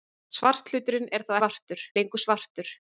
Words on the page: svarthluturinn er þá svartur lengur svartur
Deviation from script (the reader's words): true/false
false